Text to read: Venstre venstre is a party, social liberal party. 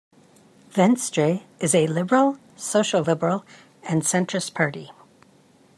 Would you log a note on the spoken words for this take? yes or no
yes